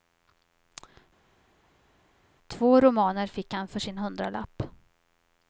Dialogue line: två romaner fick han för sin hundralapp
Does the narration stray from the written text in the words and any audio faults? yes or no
no